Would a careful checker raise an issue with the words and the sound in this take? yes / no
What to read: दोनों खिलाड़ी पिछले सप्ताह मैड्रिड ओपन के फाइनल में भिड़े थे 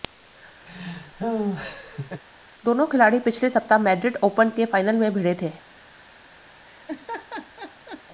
yes